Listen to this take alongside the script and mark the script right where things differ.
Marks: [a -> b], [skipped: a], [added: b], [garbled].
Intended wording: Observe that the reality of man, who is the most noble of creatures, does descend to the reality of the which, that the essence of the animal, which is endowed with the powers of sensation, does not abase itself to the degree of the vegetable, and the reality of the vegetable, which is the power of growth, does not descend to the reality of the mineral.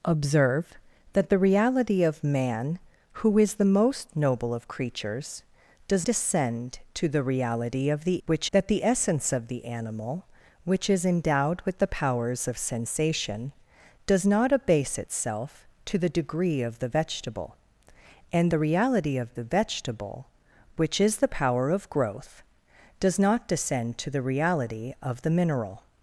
Observe that the reality of man, who is the most noble of creatures, does descend to the reality of the which, that the essence of the animal, which is endowed with the powers of sensation, does not abase itself to the degree of the vegetable, and the reality of the vegetable, which is the power of growth, does not descend to the reality of the mineral.